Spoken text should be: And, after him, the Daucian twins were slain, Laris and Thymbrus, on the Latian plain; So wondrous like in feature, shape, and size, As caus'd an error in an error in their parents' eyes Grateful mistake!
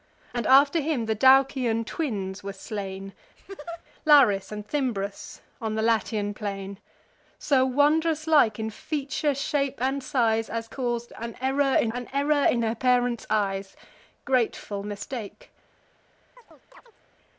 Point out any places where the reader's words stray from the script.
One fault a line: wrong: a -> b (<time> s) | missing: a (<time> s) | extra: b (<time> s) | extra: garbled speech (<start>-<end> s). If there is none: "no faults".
no faults